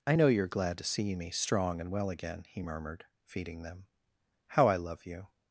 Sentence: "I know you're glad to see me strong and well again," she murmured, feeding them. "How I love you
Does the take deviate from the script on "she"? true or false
true